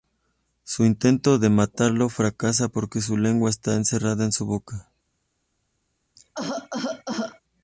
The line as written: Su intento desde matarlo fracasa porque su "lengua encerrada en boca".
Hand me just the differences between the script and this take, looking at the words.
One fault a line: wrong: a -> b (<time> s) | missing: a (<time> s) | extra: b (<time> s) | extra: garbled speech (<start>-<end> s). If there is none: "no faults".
wrong: desde -> de (1.4 s)
extra: está (3.5 s)
extra: su (4.3 s)